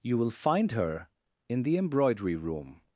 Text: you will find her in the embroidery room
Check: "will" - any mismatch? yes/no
no